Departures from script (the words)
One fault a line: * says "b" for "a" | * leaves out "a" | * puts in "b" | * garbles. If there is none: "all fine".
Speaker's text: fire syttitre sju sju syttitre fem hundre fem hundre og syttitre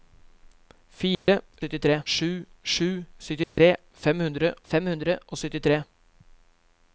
all fine